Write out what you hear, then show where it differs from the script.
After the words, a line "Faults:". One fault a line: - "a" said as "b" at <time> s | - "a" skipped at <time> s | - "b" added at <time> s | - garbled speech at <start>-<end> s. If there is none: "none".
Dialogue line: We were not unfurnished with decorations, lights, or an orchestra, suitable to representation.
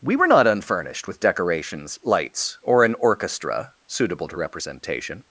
We were not unfurnished with decorations, lights, or an orchestra, suitable to representation.
Faults:
none